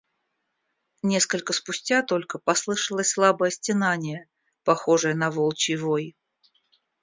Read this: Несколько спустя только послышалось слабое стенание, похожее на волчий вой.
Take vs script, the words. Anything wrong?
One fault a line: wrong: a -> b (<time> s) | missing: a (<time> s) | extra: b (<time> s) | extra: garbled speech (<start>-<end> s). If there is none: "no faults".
no faults